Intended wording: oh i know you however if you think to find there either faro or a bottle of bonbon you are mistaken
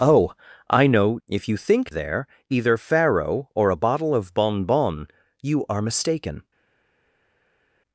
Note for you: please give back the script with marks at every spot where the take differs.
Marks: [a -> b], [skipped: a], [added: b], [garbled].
oh i know [skipped: you however] if you think [skipped: to find] there either faro or a bottle of bonbon you are mistaken